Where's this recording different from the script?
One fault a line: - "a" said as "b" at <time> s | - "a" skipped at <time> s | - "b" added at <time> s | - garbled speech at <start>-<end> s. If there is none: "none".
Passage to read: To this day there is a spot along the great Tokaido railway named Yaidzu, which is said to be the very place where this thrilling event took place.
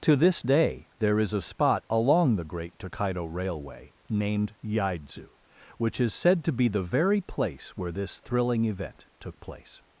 none